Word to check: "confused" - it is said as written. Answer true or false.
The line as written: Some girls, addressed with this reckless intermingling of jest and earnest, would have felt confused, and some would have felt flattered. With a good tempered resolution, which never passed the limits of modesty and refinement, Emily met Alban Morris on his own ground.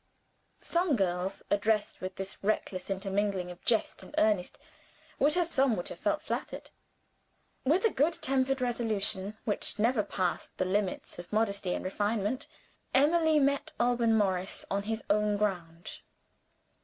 false